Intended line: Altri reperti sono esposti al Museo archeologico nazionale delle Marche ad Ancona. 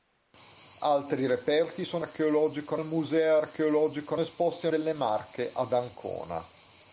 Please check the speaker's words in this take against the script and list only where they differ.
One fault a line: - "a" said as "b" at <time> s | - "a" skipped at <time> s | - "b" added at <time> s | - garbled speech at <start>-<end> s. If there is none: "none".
- "esposti" said as "archeologico" at 2.0 s
- "nazionale" said as "esposti" at 4.2 s